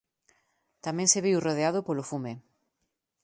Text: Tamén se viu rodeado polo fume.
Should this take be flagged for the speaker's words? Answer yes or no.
no